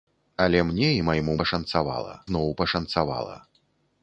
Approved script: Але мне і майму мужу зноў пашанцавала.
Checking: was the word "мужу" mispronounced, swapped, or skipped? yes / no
yes